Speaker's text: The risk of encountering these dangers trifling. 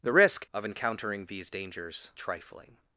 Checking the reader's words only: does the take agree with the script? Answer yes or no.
yes